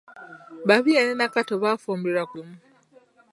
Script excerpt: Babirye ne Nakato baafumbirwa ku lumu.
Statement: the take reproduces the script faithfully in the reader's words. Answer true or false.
true